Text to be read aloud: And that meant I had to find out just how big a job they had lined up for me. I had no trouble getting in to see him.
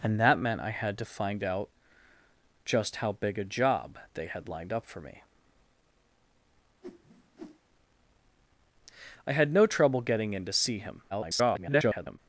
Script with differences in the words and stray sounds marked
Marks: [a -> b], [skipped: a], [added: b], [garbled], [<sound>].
And that meant I had to find out just how big a job they had lined up for me. [whoosh] I had no trouble getting in to see him. [garbled]